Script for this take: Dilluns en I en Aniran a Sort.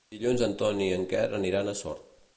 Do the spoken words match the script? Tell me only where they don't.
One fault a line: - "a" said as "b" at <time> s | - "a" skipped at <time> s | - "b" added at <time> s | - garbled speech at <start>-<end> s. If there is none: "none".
- "Ton" added at 0.6 s
- "Quer" added at 1.1 s